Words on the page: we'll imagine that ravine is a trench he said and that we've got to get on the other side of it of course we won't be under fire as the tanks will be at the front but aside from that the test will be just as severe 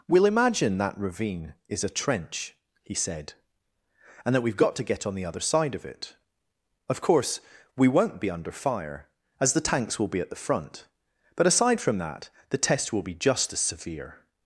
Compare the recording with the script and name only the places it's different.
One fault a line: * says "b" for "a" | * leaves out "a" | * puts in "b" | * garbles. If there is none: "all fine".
all fine